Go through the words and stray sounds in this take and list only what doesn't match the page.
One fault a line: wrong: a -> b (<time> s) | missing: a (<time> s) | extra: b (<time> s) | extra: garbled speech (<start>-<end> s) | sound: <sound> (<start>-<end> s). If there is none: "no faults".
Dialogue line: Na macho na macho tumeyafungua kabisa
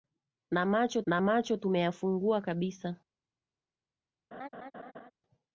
sound: laugh (4.3-5.1 s)